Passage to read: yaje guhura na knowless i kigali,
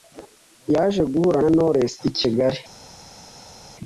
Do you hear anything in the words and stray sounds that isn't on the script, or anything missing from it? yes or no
no